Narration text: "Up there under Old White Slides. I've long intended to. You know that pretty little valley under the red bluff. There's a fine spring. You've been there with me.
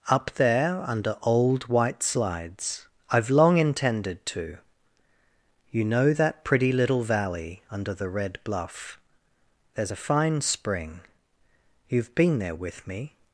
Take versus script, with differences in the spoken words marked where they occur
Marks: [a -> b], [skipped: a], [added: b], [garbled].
"Up there under Old White Slides. I've long intended to. You know that pretty little valley under the red bluff. There's a fine spring. You've been there with me.